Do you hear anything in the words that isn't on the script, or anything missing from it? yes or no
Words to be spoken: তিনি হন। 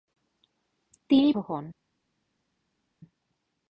no